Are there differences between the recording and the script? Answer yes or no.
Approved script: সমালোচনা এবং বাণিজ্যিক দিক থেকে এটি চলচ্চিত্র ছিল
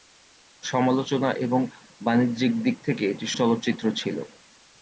no